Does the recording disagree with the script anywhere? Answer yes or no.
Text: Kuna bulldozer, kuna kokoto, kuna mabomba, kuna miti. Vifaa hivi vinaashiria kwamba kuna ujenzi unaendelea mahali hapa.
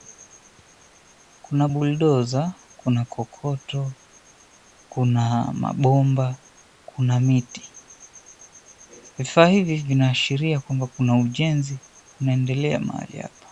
no